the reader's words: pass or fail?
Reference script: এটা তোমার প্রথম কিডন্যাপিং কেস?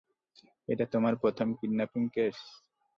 pass